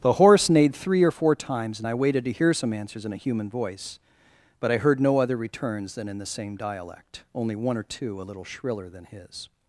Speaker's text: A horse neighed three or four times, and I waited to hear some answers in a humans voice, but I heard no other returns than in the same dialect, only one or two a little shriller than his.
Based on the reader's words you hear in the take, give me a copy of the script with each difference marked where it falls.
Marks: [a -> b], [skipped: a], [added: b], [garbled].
[A -> The] horse neighed three or four times, and I waited to hear some answers in a [humans -> human] voice, but I heard no other returns than in the same dialect, only one or two a little shriller than his.